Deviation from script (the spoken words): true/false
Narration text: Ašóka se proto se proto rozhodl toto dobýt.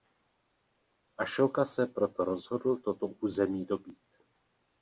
true